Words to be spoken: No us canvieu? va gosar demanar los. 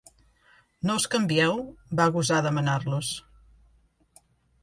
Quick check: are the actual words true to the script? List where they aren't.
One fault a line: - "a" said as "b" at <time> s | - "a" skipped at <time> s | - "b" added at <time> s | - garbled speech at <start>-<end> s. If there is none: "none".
none